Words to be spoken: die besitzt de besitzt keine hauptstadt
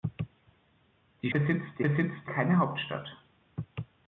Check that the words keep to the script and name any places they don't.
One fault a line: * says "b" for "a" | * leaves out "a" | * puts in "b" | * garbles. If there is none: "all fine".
all fine